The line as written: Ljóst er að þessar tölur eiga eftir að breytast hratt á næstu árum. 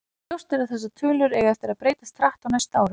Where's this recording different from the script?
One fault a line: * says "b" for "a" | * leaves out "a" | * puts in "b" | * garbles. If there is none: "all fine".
all fine